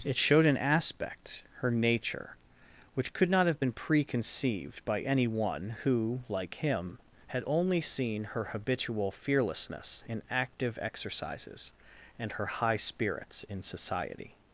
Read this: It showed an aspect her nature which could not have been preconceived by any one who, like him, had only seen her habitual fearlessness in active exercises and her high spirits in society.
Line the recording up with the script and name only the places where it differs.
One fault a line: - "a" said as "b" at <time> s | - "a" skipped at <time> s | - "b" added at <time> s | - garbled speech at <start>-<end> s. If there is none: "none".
none